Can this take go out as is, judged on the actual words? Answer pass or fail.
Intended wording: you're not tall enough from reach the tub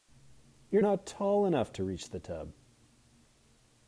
fail